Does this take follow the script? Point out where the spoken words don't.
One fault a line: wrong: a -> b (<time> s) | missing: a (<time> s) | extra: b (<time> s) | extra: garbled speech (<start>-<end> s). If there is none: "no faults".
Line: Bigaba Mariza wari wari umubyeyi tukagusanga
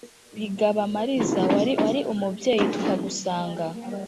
no faults